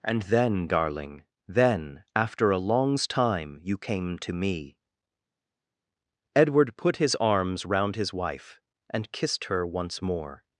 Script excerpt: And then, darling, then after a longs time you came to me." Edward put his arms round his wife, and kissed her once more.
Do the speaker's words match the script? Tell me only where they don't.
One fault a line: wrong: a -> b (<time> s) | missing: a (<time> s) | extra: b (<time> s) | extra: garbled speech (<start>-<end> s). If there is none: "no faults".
no faults